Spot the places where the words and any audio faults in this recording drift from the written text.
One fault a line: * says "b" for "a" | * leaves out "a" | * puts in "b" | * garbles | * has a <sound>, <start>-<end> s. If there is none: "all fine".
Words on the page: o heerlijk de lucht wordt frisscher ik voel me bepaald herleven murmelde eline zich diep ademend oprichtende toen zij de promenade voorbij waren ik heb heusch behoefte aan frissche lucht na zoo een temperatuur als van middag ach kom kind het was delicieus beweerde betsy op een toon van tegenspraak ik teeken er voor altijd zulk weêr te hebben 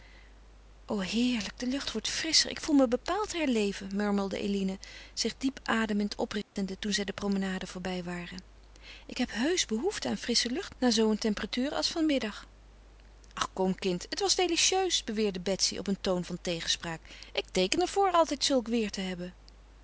* has a dropout, 6.4-6.6 s